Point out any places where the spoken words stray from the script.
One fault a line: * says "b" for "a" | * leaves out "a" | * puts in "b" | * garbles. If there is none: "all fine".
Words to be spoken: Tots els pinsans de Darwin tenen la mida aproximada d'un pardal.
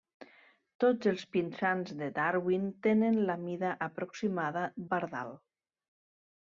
* leaves out "d'un"